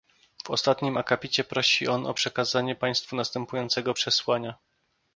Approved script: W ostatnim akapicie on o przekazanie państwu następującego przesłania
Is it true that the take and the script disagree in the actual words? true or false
true